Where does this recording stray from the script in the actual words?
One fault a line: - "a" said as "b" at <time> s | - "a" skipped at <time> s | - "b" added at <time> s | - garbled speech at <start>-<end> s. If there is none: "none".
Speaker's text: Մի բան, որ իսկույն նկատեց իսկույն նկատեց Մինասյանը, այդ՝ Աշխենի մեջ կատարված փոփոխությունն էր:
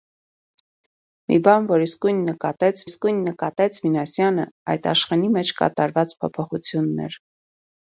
none